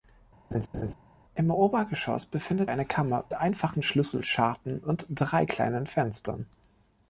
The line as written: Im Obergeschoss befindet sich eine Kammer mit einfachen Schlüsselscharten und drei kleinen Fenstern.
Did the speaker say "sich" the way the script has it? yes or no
no